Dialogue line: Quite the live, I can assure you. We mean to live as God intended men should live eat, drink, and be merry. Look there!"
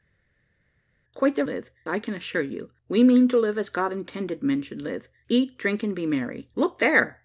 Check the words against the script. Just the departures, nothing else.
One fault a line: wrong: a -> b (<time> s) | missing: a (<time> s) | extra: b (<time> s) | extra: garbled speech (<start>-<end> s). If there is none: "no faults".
no faults